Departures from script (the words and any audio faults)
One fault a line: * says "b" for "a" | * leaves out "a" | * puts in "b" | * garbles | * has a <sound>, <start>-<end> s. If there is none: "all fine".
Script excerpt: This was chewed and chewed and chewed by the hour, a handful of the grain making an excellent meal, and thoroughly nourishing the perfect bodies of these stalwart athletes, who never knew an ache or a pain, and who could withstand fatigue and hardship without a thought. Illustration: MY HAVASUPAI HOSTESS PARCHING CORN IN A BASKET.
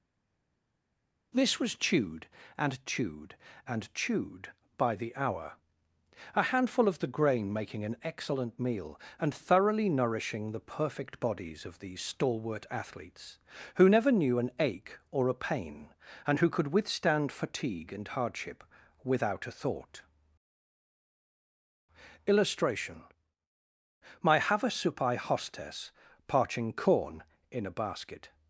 all fine